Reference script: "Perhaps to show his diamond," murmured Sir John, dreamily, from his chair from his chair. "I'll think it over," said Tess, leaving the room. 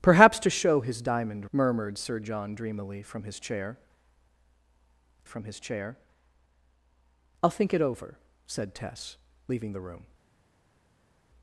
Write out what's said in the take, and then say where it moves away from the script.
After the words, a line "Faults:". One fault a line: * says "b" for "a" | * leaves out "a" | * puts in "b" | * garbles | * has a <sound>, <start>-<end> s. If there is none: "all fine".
"Perhaps to show his diamond," murmured Sir John, dreamily, from his chair from his chair. "I'll think it over," said Tess, leaving the room.
Faults:
all fine